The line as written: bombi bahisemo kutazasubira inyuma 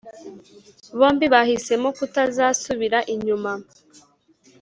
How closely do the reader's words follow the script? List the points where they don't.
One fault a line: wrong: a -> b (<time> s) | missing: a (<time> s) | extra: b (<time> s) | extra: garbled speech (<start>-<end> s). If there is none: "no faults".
no faults